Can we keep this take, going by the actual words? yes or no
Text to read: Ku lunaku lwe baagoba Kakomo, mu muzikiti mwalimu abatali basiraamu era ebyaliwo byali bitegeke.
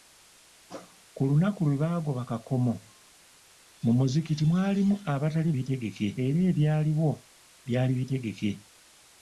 no